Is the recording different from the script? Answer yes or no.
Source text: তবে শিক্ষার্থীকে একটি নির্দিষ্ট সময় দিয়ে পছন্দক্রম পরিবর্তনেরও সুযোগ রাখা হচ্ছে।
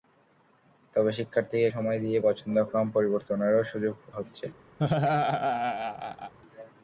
yes